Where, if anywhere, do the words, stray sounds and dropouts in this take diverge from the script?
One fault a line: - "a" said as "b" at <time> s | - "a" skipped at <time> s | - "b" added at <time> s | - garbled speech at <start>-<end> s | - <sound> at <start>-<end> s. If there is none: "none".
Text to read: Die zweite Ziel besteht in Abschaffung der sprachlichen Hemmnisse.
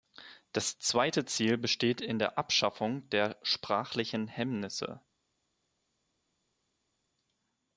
- "Die" said as "Das" at 0.5 s
- "der" added at 2.2 s